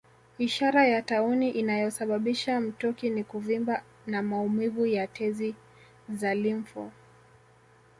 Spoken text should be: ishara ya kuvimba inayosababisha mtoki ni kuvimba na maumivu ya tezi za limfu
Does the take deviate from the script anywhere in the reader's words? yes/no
yes